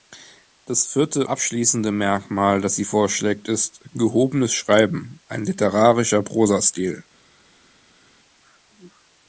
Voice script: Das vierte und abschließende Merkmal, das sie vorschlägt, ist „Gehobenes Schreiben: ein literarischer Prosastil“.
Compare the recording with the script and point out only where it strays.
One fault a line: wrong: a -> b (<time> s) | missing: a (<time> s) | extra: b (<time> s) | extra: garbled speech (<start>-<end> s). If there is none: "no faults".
missing: und (1.3 s)